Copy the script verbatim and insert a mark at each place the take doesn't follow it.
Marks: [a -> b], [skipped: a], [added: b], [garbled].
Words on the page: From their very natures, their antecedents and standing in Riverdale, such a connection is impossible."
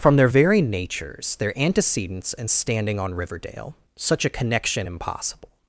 From their very natures, their antecedents and standing [in -> on] Riverdale, such a connection [skipped: is] impossible."